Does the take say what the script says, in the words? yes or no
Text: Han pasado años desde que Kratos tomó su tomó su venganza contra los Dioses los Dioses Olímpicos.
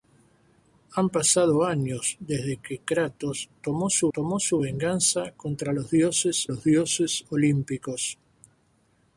yes